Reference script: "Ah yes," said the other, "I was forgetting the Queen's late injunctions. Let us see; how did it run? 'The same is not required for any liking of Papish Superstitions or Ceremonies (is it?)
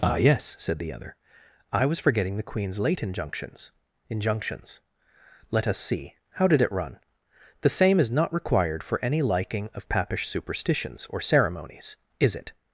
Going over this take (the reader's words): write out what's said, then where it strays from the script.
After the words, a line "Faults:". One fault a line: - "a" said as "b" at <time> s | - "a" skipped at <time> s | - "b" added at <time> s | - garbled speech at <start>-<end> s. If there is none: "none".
"Ah yes," said the other, "I was forgetting the Queen's late injunctions injunctions. Let us see; how did it run? 'The same is not required for any liking of Papish Superstitions or Ceremonies (is it?)
Faults:
- "injunctions" added at 4.1 s